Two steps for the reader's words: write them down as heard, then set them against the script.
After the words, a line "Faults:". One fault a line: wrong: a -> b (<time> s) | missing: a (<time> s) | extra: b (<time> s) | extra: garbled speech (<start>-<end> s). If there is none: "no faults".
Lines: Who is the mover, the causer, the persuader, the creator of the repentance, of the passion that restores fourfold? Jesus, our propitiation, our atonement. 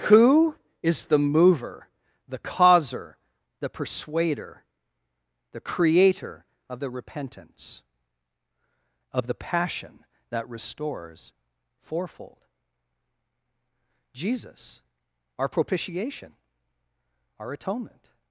Who is the mover, the causer, the persuader, the creator of the repentance, of the passion that restores fourfold? Jesus, our propitiation, our atonement.
Faults:
no faults